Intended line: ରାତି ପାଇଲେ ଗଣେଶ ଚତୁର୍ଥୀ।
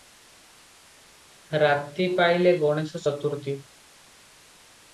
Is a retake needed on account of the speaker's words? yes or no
no